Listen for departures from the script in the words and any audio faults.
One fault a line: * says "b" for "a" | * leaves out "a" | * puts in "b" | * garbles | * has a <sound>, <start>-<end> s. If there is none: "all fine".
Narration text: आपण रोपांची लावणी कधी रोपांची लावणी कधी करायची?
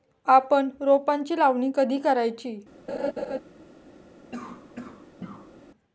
* leaves out "रोपांची लावणी कधी"
* has a laugh, 2.9-3.4 s
* has a cough, 4.3-5.5 s